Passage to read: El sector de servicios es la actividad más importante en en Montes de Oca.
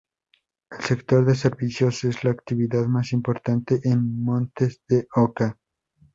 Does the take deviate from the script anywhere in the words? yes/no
yes